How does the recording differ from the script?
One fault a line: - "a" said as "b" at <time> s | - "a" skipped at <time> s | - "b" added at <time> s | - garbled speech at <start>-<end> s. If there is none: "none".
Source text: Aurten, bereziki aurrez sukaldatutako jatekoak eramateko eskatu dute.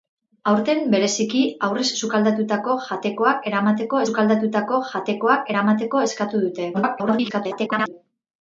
- "sukaldatutako jatekoak eramateko" added at 4.1 s
- garbled speech at 6.7-7.9 s